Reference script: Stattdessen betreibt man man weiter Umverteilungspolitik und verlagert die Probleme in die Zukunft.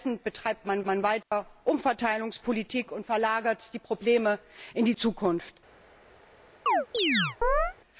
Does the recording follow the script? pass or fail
pass